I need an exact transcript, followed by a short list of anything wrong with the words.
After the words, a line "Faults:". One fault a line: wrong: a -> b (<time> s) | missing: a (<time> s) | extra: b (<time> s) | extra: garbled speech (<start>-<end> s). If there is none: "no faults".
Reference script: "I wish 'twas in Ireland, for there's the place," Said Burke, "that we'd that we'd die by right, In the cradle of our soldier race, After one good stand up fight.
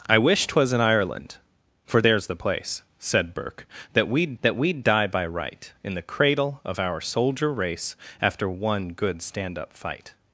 "I wish 'twas in Ireland, for there's the place," Said Burke, "that we'd that we'd die by right, In the cradle of our soldier race, After one good stand up fight.
Faults:
no faults